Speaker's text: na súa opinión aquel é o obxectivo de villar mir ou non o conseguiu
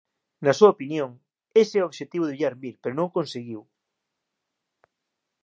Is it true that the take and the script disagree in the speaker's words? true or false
true